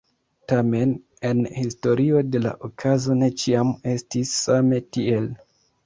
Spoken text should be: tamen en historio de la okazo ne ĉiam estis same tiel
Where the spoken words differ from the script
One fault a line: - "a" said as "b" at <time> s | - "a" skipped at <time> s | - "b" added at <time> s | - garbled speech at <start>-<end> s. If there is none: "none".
none